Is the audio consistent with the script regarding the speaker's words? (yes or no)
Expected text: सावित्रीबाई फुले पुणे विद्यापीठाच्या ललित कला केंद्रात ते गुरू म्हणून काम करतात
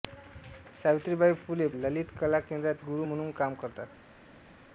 no